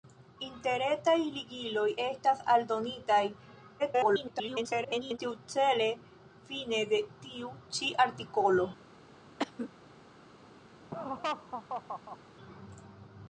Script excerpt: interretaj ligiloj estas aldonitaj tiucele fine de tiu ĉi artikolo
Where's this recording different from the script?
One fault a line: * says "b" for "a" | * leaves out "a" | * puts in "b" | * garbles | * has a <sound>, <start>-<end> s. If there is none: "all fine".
* garbles
* has a cough, 9.4-9.7 s
* has a laugh, 10.9-12.2 s